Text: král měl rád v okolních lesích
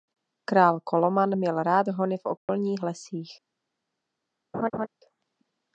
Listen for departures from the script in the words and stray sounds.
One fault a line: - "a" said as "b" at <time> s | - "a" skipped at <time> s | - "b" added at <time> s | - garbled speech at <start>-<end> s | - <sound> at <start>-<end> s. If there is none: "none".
- "koloman" added at 0.8 s
- "hony" added at 1.9 s
- dropout at 2.4-2.5 s
- laugh at 4.5-4.9 s